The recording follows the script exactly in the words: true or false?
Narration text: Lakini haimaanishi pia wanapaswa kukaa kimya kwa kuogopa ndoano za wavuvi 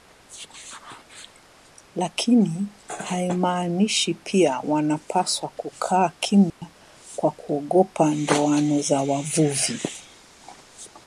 true